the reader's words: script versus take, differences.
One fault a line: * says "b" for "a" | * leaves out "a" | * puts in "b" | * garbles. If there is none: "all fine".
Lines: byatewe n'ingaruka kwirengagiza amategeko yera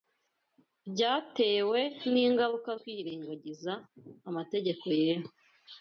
all fine